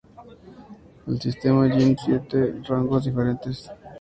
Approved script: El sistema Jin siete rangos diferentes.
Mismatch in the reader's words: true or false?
false